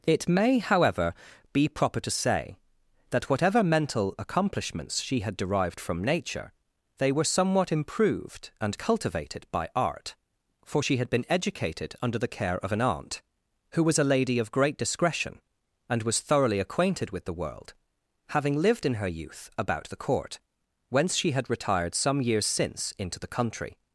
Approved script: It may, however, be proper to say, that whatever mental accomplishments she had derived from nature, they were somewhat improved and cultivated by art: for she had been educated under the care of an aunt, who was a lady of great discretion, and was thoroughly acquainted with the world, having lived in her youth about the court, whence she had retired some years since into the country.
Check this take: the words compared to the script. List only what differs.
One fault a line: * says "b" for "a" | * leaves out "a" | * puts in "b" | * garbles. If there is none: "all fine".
all fine